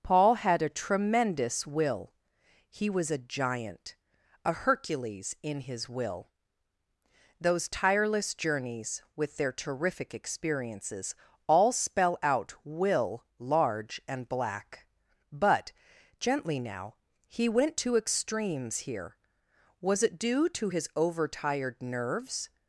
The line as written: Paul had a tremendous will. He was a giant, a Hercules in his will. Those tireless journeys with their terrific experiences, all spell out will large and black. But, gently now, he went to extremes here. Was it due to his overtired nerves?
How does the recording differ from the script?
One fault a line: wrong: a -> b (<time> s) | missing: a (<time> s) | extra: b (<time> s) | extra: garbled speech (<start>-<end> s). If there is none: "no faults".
no faults